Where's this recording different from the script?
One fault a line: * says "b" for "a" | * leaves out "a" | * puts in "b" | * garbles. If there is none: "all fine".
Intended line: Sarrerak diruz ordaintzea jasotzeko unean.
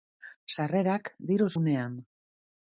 * leaves out "ordaintzea jasotzeko"